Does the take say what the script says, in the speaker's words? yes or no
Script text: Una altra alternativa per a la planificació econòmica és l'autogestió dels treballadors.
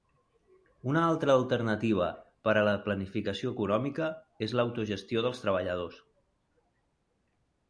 yes